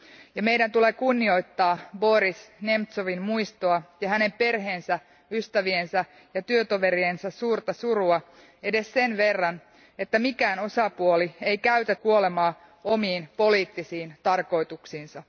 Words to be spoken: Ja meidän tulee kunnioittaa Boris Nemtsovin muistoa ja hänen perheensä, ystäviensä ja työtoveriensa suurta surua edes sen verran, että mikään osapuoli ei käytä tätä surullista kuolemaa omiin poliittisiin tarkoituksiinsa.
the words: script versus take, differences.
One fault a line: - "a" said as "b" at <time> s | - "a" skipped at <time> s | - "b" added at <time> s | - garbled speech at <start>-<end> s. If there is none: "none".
- "tätä surullista" skipped at 12.0 s